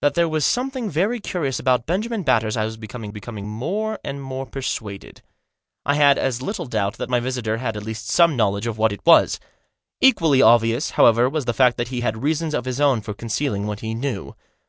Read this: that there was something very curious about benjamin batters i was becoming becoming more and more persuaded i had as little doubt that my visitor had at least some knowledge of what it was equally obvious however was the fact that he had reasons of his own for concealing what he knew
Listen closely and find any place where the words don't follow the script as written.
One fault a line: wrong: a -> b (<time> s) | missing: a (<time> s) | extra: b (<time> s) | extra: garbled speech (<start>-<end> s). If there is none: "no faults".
no faults